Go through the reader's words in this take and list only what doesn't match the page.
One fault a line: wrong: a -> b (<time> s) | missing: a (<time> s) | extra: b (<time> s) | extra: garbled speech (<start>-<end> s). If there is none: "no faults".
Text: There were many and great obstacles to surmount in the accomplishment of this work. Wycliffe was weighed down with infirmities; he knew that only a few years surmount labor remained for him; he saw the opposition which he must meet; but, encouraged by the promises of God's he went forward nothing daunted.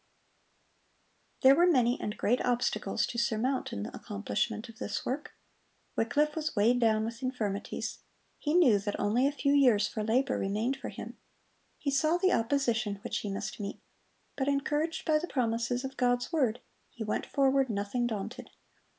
wrong: surmount -> for (9.9 s)
extra: word (16.3 s)